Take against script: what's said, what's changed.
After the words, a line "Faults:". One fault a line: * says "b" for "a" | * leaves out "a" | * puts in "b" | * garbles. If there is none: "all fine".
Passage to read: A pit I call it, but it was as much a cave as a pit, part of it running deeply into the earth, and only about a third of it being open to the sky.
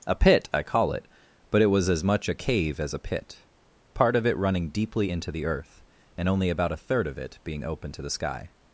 A pit I call it, but it was as much a cave as a pit, part of it running deeply into the earth, and only about a third of it being open to the sky.
Faults:
all fine